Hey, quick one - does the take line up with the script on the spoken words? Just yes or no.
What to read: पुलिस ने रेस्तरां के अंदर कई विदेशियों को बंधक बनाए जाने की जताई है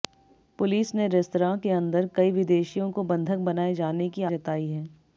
yes